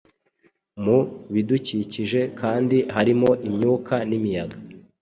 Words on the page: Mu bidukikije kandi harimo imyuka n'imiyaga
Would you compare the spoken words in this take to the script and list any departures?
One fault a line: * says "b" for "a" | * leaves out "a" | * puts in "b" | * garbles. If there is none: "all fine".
all fine